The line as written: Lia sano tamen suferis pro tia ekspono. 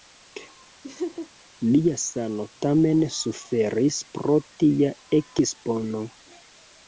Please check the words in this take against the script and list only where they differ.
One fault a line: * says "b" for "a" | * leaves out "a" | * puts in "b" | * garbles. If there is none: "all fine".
all fine